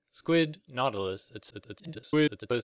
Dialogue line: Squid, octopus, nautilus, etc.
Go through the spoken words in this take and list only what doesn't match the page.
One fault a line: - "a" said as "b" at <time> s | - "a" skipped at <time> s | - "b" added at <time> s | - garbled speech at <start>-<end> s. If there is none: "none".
- "octopus" skipped at 0.6 s
- garbled speech at 1.5-2.6 s